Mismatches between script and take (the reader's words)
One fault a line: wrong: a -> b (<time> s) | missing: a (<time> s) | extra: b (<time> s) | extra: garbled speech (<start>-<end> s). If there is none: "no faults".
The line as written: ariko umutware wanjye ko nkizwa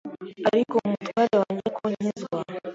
no faults